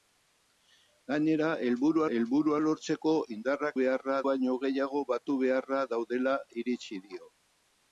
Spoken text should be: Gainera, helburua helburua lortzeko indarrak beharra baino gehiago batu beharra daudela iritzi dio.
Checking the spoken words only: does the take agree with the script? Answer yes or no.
yes